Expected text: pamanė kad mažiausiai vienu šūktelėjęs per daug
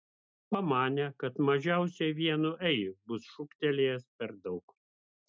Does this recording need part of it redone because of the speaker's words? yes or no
yes